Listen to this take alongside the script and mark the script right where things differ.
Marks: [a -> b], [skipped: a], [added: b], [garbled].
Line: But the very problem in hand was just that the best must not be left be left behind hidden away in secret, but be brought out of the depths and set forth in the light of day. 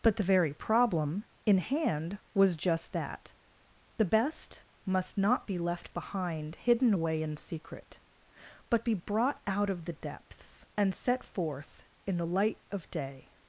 But the very problem in hand was just that the best must not be left [skipped: be left] behind hidden away in secret, but be brought out of the depths and set forth in the light of day.